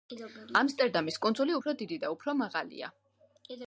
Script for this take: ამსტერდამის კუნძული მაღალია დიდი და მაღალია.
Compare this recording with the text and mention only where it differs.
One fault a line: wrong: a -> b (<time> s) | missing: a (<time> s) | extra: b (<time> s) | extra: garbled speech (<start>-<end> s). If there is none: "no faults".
wrong: მაღალია -> უფრო (1.6 s)
extra: უფრო (2.2 s)